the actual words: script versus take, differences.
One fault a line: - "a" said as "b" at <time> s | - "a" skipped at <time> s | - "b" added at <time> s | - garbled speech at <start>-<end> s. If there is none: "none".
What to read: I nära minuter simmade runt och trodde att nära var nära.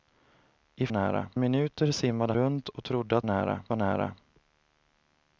none